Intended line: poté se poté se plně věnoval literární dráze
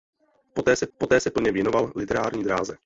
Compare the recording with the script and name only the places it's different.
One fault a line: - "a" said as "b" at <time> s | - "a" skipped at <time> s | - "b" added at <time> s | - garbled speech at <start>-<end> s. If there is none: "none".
none